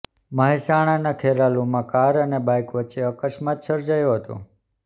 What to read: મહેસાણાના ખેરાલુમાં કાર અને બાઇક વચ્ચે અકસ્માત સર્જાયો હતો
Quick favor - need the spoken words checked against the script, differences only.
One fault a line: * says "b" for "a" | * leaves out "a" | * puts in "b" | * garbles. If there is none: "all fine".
all fine